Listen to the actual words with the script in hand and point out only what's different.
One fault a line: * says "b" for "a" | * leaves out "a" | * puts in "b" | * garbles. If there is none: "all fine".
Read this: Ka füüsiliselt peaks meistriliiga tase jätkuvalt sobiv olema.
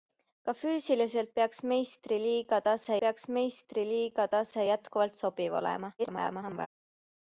* puts in "peaks meistriliiga tase"
* garbles